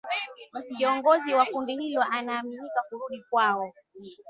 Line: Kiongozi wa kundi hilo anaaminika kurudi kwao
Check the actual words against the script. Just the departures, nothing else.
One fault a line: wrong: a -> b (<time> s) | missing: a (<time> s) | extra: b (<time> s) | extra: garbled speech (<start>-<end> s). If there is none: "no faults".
no faults